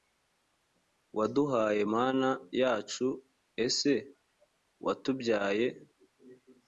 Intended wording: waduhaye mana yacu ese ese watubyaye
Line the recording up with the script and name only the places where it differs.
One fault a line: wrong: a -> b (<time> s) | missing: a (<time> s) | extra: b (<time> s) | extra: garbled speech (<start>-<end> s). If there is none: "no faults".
missing: ese (3.9 s)